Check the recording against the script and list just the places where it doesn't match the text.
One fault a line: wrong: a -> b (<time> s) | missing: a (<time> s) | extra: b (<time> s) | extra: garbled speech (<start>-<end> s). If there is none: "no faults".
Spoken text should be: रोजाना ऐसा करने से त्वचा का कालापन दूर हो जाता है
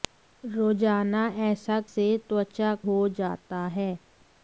missing: करने (1.8 s)
missing: का कालापन दूर (2.7 s)